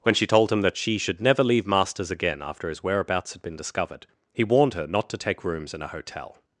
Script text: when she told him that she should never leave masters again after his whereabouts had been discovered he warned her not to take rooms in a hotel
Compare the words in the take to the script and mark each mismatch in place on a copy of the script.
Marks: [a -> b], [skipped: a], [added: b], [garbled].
when she told him that she should never leave masters again after his whereabouts had been discovered he warned her not to take rooms in a hotel